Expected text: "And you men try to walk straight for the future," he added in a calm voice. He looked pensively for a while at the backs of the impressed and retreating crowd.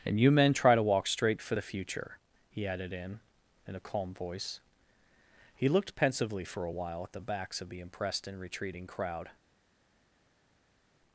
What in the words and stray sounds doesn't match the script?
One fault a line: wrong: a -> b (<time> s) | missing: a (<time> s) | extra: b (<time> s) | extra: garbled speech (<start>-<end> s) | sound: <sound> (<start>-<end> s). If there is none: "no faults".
extra: in (3.7 s)